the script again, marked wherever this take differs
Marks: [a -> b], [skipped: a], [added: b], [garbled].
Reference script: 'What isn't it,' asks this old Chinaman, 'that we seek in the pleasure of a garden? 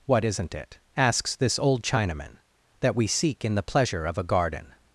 'What isn't it,' asks this old Chinaman, 'that we seek in the pleasure of a garden?